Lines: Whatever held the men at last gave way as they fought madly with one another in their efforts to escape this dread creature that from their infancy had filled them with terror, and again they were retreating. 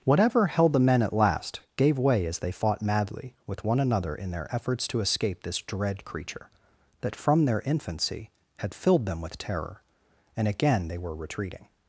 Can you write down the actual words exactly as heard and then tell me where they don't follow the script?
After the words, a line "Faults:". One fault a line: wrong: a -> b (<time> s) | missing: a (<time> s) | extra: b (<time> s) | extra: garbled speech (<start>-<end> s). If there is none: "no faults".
Whatever held the men at last gave way as they fought madly with one another in their efforts to escape this dread creature that from their infancy had filled them with terror, and again they were retreating.
Faults:
no faults